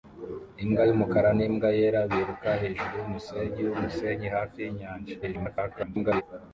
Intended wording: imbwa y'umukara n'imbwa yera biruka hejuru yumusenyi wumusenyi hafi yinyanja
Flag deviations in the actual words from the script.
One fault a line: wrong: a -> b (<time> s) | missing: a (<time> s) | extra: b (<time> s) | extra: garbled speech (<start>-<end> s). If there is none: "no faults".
extra: garbled speech (5.2-6.2 s)